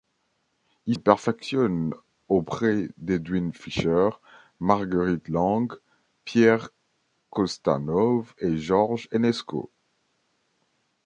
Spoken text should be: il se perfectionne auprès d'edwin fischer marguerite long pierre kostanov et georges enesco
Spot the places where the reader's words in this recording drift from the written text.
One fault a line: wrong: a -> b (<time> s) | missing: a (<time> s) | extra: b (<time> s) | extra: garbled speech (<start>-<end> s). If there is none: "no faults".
missing: se (0.9 s)